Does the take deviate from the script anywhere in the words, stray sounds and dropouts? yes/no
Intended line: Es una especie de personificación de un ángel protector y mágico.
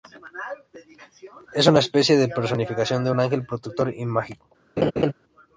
yes